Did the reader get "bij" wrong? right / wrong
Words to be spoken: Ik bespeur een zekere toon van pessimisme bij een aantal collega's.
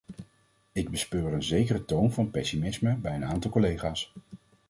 right